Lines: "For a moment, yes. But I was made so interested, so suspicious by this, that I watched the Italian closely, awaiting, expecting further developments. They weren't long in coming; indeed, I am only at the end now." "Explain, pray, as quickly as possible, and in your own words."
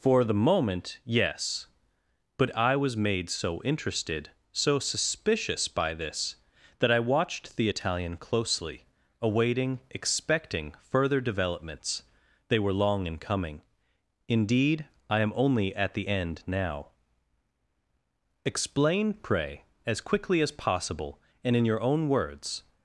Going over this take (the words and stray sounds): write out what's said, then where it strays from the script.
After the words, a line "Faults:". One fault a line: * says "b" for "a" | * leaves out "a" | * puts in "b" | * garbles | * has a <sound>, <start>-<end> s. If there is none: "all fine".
"For the moment, yes. But I was made so interested, so suspicious by this, that I watched the Italian closely, awaiting, expecting further developments. They were long in coming; indeed, I am only at the end now." "Explain, pray, as quickly as possible, and in your own words."
Faults:
* says "the" for "a"
* says "were" for "weren't"